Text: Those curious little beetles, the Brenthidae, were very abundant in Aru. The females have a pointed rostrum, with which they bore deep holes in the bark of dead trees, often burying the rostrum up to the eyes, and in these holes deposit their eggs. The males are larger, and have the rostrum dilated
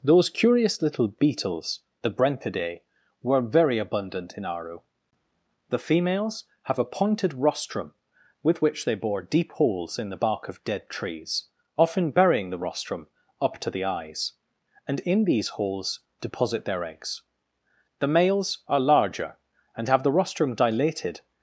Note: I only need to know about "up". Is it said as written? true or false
true